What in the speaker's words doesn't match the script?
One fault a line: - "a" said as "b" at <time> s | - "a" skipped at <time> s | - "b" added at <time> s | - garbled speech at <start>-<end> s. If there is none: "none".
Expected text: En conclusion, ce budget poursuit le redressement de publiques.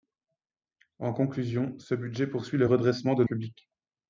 none